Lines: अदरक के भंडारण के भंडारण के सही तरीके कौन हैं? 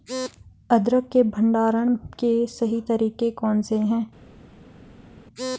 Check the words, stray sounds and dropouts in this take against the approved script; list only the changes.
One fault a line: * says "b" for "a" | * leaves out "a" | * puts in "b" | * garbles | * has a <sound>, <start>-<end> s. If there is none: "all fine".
* leaves out "भंडारण के"
* puts in "से"